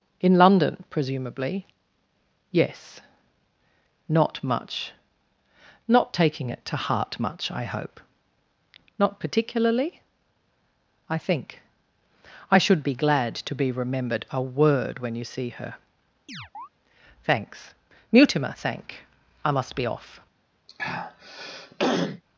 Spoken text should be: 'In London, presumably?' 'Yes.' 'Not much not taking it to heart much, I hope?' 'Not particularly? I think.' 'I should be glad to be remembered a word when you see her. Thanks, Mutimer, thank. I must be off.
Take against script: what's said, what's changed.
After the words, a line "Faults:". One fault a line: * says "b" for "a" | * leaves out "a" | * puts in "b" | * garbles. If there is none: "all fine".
'In London, presumably?' 'Yes.' 'Not much not taking it to heart much, I hope?' 'Not particularly? I think.' 'I should be glad to be remembered a word when you see her. Thanks, Mutimer, thank. I must be off.
Faults:
all fine